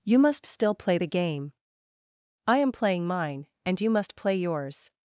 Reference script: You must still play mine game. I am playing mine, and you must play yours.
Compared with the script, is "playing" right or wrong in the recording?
right